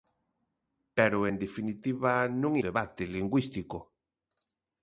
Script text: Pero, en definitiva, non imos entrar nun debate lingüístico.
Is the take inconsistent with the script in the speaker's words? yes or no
yes